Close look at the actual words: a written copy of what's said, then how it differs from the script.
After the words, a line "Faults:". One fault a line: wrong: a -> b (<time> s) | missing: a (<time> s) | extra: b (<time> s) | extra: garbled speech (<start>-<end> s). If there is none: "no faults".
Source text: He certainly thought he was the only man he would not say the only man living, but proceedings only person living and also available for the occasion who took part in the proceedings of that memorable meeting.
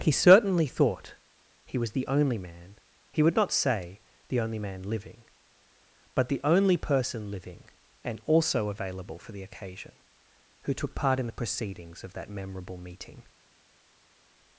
He certainly thought he was the only man he would not say the only man living, but the only person living and also available for the occasion who took part in the proceedings of that memorable meeting.
Faults:
wrong: proceedings -> the (6.3 s)